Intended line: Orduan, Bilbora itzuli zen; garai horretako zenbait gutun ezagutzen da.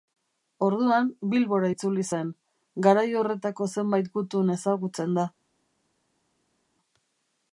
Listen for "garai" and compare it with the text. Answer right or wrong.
right